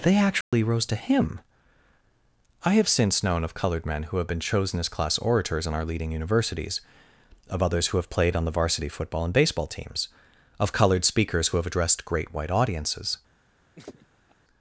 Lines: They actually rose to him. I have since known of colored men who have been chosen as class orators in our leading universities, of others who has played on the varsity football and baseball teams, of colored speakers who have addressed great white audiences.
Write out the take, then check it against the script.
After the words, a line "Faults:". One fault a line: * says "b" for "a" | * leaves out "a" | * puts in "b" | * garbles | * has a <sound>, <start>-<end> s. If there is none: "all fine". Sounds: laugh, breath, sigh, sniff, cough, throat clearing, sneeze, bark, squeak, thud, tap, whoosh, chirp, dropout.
They actually rose to him. I have since known of colored men who have been chosen as class orators in our leading universities, of others who have played on the varsity football and baseball teams, of colored speakers who have addressed great white audiences.
Faults:
* has a dropout, 0.4-0.5 s
* says "have" for "has"
* has a laugh, 13.8-14.4 s